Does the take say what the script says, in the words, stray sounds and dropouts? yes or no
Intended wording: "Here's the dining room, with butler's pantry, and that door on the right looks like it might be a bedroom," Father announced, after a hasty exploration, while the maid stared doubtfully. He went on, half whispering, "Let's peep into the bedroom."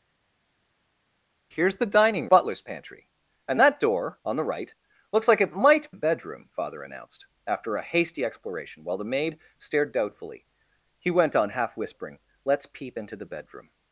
no